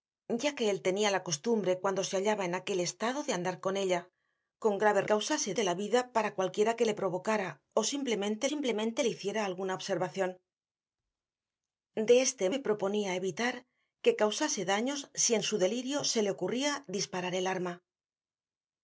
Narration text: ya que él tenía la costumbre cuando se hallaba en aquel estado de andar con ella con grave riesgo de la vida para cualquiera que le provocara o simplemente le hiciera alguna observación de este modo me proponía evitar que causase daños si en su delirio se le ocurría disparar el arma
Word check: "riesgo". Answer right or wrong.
wrong